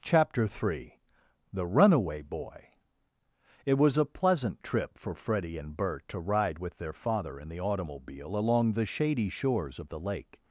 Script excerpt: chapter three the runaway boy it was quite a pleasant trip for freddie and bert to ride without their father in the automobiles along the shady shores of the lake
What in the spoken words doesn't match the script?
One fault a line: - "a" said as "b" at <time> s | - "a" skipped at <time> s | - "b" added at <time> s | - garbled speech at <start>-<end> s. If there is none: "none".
- "quite" skipped at 4.0 s
- "without" said as "with" at 6.6 s
- "automobiles" said as "automobile" at 7.6 s